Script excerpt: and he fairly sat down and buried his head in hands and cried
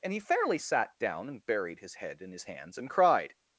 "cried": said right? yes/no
yes